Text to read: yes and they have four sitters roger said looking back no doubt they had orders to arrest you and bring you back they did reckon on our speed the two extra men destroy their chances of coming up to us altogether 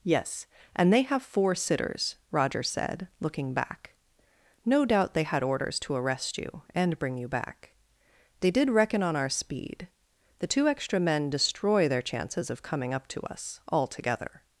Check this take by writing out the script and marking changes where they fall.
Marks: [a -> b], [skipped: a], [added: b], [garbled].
yes and they have four sitters roger said looking back no doubt they had orders to arrest you and bring you back they did reckon on our speed the two extra men destroy their chances of coming up to us altogether